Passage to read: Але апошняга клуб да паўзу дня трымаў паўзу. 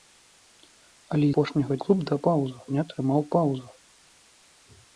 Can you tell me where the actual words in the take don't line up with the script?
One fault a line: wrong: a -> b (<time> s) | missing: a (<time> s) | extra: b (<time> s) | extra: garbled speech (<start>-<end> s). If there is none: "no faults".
no faults